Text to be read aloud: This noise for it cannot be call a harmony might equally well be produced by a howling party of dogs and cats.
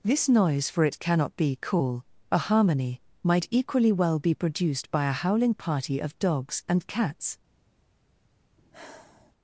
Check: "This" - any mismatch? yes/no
no